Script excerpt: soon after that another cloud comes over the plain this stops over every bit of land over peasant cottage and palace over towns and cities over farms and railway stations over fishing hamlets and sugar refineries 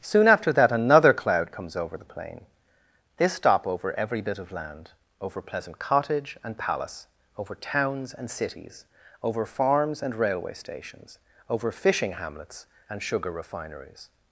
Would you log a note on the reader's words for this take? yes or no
yes